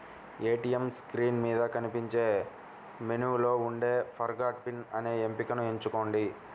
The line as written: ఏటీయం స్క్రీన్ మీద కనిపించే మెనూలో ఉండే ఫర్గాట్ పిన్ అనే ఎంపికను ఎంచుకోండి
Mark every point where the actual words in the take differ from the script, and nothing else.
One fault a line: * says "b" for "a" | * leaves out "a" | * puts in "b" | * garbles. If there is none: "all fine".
all fine